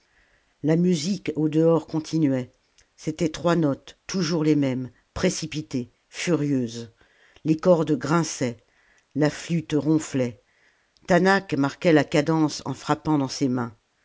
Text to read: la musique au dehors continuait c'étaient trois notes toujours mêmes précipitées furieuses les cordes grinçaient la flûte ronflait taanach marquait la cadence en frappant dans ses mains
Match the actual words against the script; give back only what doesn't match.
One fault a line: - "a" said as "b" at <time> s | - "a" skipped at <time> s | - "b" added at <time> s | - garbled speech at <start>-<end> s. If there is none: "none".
- "les" added at 4.4 s